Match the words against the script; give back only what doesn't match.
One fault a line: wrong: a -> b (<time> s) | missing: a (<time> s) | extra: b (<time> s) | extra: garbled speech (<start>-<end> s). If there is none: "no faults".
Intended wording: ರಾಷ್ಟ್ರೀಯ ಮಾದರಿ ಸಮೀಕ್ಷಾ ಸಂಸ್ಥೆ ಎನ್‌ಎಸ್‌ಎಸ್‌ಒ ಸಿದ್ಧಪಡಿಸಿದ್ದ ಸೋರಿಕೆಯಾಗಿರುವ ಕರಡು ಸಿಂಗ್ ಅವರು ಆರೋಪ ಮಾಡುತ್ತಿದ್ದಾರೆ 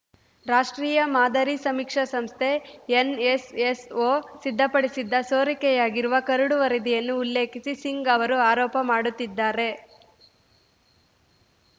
extra: ವರದಿಯನ್ನು ಉಲ್ಲೇಖಿಸಿ (6.6 s)